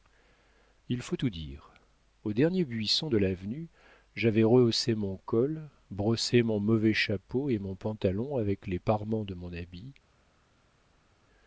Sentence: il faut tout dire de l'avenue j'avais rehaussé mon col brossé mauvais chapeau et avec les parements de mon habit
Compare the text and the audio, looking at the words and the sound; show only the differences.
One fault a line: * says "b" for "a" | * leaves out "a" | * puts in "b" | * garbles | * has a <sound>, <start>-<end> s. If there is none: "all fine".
* puts in "au dernier buisson"
* puts in "mon"
* puts in "mon pantalon"